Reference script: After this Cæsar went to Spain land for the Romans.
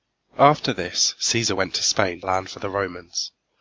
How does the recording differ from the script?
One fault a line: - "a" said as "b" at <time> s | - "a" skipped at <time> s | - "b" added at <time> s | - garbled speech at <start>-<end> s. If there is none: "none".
none